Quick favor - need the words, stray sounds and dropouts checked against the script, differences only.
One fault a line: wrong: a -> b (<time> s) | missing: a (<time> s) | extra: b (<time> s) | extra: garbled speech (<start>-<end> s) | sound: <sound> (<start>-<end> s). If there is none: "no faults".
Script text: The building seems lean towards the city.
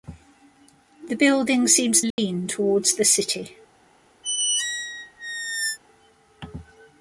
sound: dropout (2.1-2.2 s)
sound: squeak (4.2-5.8 s)